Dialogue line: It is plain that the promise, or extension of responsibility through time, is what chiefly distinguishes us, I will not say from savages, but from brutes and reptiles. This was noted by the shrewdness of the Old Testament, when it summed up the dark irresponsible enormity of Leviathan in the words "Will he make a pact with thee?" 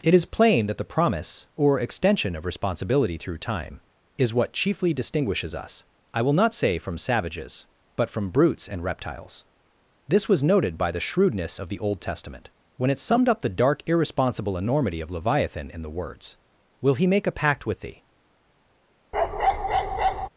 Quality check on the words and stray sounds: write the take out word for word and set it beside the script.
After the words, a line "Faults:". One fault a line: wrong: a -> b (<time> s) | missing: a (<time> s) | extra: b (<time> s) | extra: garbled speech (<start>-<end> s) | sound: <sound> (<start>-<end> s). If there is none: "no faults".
It is plain that the promise, or extension of responsibility through time, is what chiefly distinguishes us, I will not say from savages, but from brutes and reptiles. This was noted by the shrewdness of the Old Testament, when it summed up the dark irresponsible enormity of Leviathan in the words "Will he make a pact with thee?"
Faults:
sound: bark (19.1-20.3 s)